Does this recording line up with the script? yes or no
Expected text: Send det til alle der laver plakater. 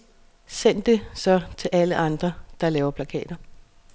no